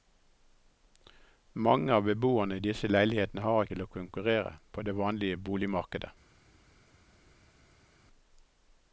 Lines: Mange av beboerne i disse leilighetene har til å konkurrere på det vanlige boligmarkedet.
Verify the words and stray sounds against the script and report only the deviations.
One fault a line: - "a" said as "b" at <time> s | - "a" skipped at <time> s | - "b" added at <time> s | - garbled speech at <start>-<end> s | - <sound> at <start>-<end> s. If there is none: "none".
none